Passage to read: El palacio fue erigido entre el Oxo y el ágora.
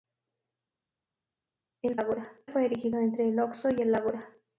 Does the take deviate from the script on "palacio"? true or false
true